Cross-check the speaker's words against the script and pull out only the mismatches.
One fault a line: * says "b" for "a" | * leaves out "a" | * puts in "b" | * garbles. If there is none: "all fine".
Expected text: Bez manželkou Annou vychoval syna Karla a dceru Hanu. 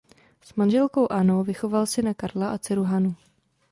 * says "S" for "Bez"